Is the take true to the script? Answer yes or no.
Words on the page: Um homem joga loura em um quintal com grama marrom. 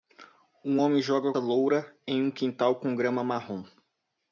yes